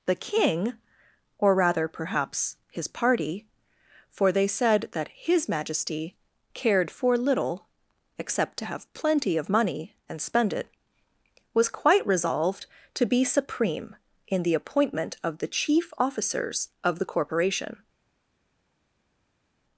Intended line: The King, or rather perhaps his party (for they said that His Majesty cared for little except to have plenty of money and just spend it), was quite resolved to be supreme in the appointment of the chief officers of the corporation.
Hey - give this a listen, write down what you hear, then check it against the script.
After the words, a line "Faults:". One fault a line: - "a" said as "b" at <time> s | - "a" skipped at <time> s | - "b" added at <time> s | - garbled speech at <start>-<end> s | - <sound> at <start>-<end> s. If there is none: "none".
The King, or rather perhaps his party (for they said that His Majesty cared for little except to have plenty of money and spend it), was quite resolved to be supreme in the appointment of the chief officers of the corporation.
Faults:
- "just" skipped at 10.2 s